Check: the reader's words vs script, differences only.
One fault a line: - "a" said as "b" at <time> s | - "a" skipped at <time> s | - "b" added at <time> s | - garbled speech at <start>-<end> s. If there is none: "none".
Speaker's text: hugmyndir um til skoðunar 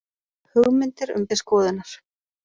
none